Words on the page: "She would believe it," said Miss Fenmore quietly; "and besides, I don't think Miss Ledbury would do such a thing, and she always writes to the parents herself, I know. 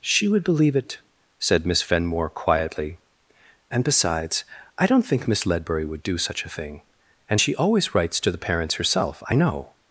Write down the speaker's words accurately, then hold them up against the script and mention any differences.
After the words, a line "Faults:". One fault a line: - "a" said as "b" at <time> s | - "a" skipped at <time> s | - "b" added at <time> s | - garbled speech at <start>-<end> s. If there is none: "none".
"She would believe it," said Miss Fenmore quietly; "and besides, I don't think Miss Ledbury would do such a thing, and she always writes to the parents herself, I know.
Faults:
none